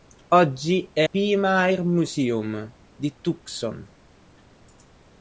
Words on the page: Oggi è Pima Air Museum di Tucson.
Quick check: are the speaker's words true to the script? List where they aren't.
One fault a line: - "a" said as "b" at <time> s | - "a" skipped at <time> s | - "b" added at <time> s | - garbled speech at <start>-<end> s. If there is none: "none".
none